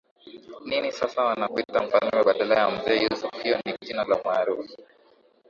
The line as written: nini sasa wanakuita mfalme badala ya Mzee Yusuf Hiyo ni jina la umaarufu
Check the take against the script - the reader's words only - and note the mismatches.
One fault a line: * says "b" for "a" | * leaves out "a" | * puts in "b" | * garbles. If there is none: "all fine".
all fine